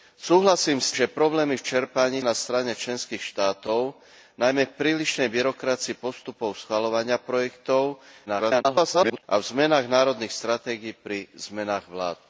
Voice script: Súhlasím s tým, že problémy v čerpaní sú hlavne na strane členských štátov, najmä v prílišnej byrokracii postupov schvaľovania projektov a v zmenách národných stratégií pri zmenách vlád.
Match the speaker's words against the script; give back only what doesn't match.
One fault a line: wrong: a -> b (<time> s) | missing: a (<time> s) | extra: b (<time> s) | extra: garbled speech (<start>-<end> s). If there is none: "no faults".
missing: tým (0.9 s)
missing: sú hlavne (2.2 s)
extra: garbled speech (8.3-9.2 s)